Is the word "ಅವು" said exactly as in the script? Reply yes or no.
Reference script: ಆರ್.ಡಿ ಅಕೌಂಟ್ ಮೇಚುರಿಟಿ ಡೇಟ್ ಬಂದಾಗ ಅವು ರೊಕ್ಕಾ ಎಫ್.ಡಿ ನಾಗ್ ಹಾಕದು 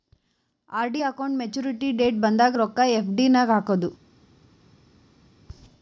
no